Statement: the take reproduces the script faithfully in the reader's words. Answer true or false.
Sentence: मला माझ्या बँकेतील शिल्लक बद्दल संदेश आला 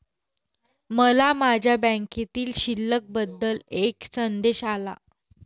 false